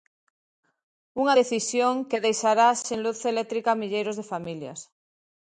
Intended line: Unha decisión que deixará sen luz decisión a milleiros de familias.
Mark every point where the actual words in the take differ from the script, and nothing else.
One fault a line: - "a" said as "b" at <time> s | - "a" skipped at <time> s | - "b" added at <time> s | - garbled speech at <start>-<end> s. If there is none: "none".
- "decisión" said as "eléctrica" at 3.3 s